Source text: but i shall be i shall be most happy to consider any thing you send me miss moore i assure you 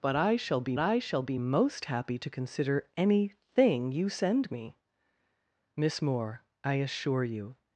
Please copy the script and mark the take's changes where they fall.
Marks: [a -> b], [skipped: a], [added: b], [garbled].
but i shall be i shall be most happy to consider any thing you send me miss moore i assure you